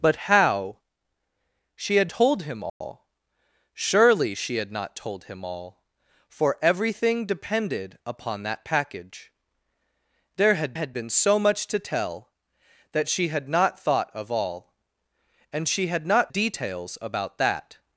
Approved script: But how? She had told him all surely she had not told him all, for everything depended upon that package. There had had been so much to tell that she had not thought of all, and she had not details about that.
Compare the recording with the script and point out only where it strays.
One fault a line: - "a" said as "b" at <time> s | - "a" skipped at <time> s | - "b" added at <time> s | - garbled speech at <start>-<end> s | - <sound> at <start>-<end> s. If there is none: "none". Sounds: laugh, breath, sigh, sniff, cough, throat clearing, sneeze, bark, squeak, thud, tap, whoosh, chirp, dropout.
- dropout at 2.7-2.8 s